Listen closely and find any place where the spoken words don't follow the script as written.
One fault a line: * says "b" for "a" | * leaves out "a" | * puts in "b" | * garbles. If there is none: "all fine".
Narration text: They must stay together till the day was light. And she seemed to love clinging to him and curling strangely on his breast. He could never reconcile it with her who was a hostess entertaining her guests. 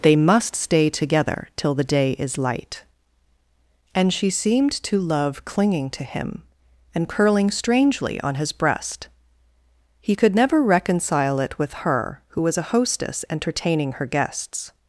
* says "is" for "was"